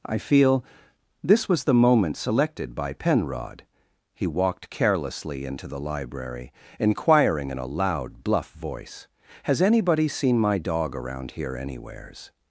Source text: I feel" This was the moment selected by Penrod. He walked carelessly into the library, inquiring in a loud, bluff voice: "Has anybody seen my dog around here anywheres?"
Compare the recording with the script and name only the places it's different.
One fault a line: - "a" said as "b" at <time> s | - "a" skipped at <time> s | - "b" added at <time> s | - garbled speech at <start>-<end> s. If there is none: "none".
none